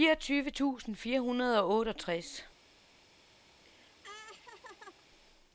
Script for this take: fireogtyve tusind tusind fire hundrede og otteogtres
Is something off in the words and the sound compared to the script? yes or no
yes